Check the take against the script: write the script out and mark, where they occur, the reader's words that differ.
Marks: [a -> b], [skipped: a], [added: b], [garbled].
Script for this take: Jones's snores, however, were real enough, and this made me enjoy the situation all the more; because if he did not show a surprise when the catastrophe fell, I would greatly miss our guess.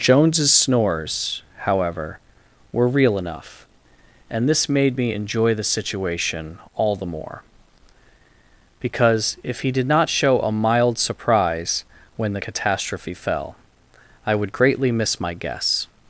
Jones's snores, however, were real enough, and this made me enjoy the situation all the more; because if he did not show a [added: mild] surprise when the catastrophe fell, I would greatly miss [our -> my] guess.